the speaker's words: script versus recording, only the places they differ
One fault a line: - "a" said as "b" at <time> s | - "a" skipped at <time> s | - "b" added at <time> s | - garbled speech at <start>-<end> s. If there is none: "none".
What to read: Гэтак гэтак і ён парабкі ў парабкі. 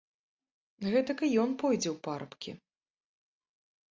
- "гэтак" skipped at 1.2 s
- "парабкі" said as "пойдзе" at 1.6 s